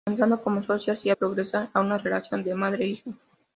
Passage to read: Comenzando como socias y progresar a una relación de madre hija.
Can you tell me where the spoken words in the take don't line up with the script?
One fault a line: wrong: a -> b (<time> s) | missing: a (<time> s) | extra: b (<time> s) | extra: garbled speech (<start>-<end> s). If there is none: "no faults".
no faults